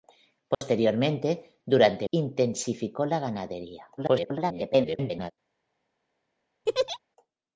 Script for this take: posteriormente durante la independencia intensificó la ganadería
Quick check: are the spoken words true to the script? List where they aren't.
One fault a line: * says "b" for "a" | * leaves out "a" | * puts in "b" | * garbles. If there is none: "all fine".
* leaves out "la independencia"
* garbles